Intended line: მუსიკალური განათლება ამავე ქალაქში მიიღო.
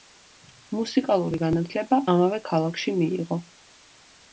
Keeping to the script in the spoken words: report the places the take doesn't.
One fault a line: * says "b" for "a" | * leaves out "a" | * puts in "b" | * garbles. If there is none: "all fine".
all fine